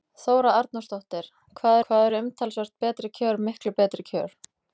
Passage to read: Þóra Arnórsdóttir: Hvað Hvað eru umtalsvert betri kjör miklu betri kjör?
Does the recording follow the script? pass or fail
pass